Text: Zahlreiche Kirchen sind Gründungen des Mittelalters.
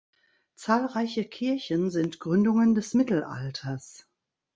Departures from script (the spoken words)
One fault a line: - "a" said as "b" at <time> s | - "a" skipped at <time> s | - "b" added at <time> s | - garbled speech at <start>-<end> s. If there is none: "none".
none